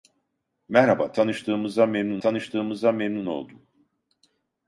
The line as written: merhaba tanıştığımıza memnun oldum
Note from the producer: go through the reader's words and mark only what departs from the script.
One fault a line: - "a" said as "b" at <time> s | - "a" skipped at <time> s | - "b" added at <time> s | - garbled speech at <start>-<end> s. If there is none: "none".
- "tanıştığımıza memnun" added at 2.2 s